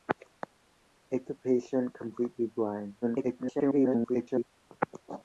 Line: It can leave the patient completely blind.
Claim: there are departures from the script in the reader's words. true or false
true